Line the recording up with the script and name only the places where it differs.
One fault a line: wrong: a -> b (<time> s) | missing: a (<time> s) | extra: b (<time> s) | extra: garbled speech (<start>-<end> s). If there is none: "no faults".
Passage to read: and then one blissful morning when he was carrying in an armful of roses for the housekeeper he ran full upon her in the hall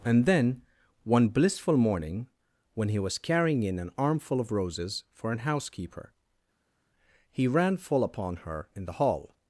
wrong: the -> an (5.3 s)